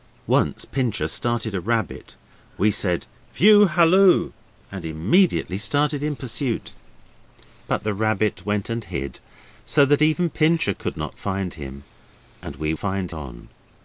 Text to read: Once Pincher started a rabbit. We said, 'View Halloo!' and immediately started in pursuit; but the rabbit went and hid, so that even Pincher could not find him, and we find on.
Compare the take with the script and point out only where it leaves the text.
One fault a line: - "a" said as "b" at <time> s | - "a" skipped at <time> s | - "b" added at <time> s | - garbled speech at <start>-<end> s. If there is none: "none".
none